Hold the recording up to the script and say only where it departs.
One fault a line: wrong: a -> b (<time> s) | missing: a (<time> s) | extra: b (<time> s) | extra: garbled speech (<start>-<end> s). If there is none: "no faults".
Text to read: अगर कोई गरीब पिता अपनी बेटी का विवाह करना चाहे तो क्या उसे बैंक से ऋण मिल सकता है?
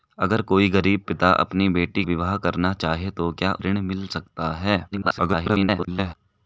missing: का (2.0 s)
missing: उसे बैंक से (3.5 s)
extra: garbled speech (4.9-6.1 s)